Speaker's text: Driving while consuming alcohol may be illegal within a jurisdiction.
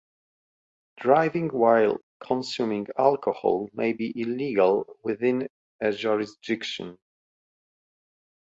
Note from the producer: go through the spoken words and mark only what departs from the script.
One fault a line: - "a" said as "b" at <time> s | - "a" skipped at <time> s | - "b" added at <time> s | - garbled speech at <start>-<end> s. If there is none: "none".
none